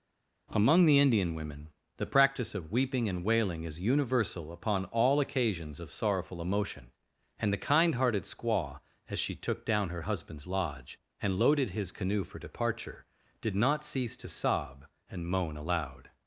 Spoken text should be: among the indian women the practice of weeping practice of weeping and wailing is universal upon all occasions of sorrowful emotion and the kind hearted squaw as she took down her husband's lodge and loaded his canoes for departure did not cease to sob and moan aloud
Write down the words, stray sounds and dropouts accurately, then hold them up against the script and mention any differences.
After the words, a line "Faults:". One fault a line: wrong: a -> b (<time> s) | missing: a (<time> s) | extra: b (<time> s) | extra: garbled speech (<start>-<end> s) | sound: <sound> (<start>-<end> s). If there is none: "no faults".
among the indian women the practice of weeping and wailing is universal upon all occasions of sorrowful emotion and the kind hearted squaw as she took down her husband's lodge and loaded his canoe for departure did not cease to sob and moan aloud
Faults:
missing: practice of weeping (3.1 s)
wrong: canoes -> canoe (11.9 s)